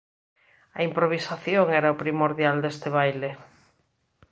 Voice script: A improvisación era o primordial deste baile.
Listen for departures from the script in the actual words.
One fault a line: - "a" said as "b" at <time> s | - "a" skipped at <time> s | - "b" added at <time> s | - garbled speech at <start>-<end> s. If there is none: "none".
none